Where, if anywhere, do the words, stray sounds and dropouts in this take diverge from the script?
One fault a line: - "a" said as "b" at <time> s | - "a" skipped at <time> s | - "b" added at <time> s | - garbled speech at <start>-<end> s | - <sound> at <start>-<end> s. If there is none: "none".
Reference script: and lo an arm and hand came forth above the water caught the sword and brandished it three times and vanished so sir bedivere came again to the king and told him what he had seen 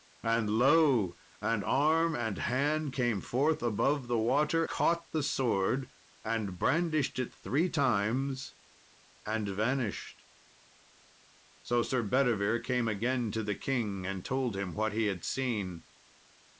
none